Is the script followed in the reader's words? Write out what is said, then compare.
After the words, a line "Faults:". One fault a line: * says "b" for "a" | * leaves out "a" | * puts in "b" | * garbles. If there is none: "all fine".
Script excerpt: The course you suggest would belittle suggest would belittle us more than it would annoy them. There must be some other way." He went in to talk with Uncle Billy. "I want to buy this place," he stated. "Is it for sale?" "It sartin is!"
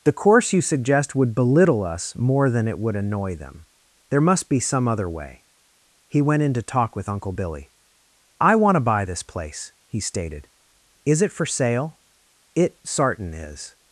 The course you suggest would belittle us more than it would annoy them. There must be some other way." He went in to talk with Uncle Billy. "I want to buy this place," he stated. "Is it for sale?" "It sartin is!"
Faults:
* leaves out "suggest would belittle"